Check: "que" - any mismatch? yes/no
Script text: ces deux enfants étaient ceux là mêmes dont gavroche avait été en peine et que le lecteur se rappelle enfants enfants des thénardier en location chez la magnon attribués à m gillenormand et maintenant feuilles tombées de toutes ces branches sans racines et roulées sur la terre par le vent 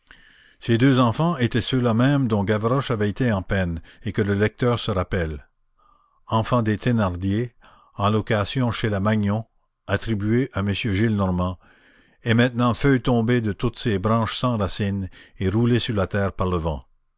no